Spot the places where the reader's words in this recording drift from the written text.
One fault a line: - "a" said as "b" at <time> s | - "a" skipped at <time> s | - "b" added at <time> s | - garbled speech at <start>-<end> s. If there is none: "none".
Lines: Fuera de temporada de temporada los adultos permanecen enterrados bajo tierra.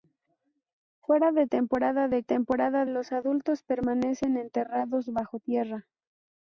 none